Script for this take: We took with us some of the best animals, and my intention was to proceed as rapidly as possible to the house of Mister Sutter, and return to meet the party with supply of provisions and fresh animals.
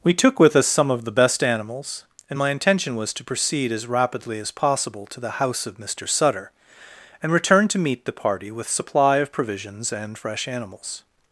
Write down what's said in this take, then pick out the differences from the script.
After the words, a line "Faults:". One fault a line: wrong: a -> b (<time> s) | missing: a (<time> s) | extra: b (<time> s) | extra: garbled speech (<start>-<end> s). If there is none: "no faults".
We took with us some of the best animals, and my intention was to proceed as rapidly as possible to the house of Mister Sutter, and return to meet the party with supply of provisions and fresh animals.
Faults:
no faults